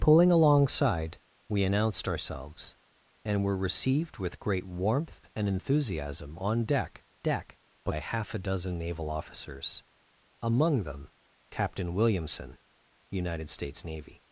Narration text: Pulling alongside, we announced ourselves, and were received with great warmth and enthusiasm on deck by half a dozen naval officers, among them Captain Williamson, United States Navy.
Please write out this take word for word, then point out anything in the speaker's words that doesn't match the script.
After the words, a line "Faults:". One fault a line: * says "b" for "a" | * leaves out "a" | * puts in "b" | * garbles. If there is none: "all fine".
Pulling alongside, we announced ourselves, and were received with great warmth and enthusiasm on deck deck by half a dozen naval officers, among them Captain Williamson, United States Navy.
Faults:
* puts in "deck"